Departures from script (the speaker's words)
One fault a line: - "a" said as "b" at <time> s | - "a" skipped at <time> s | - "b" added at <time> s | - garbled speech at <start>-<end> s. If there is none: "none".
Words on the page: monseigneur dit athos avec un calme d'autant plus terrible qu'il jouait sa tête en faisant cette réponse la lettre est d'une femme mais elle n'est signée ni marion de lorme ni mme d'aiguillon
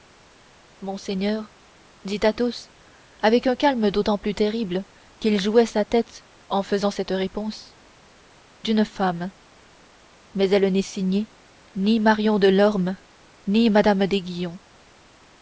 - "la lettre est" skipped at 7.8 s